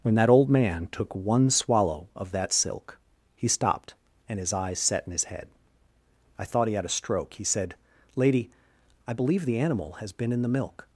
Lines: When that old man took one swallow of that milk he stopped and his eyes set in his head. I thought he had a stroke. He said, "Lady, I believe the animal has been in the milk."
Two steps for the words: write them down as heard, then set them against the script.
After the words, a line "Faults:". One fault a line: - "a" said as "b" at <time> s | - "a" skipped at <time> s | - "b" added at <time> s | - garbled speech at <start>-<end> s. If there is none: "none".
When that old man took one swallow of that silk he stopped and his eyes set in his head. I thought he had a stroke. He said, "Lady, I believe the animal has been in the milk."
Faults:
- "milk" said as "silk" at 2.5 s